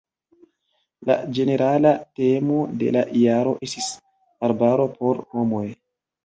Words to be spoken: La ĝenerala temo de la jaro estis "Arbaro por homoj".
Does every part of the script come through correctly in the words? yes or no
yes